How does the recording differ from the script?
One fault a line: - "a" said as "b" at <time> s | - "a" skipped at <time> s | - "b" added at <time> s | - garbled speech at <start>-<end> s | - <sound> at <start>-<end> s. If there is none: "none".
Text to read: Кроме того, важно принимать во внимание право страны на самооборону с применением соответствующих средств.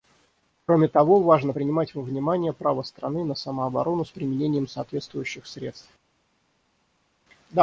none